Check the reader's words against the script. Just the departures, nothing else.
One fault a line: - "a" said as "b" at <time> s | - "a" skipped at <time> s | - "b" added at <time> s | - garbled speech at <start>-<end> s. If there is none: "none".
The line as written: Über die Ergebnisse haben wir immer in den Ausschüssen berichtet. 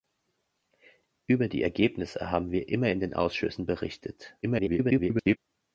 - garbled speech at 4.4-5.4 s